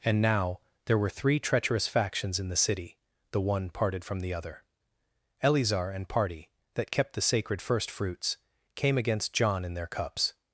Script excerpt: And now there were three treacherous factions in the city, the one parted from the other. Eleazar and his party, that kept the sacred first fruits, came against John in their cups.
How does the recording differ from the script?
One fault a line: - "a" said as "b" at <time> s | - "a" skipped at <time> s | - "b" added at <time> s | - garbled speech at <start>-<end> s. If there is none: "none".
- "his" skipped at 6.1 s